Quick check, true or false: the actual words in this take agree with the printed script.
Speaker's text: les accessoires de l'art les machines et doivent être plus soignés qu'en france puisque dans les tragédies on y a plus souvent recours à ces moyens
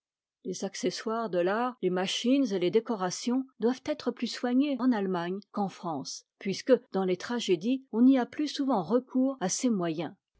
false